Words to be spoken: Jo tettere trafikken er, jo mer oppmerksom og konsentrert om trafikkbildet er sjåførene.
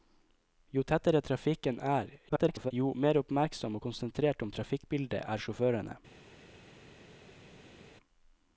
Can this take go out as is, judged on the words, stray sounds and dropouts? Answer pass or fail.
fail